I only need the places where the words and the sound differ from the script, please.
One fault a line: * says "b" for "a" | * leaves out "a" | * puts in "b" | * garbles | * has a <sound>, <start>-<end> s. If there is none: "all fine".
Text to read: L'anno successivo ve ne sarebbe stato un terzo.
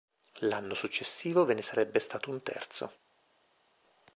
all fine